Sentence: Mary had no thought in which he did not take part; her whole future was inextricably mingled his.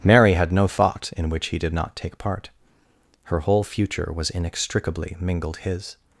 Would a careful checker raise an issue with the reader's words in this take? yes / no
no